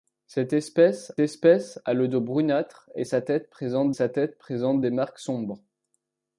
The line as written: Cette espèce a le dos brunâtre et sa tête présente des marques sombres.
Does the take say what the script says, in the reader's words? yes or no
no